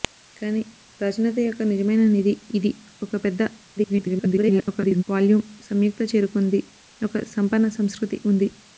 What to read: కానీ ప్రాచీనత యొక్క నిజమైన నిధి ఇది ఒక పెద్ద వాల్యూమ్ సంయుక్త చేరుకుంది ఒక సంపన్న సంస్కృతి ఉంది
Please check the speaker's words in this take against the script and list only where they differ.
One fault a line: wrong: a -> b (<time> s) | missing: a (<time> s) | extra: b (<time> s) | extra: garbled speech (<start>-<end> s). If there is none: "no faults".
extra: garbled speech (3.8-5.0 s)